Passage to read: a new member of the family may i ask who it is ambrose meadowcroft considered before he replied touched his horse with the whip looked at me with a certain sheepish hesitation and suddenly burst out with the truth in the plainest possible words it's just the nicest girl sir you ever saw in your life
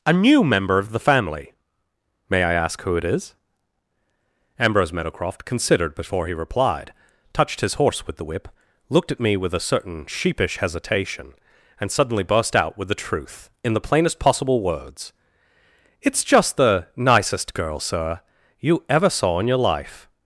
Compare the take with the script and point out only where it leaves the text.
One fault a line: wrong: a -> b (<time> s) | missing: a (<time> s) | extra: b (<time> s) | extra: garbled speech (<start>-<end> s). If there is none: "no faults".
no faults